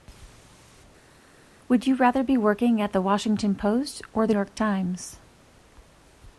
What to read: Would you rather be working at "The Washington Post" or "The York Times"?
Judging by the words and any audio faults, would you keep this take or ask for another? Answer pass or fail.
pass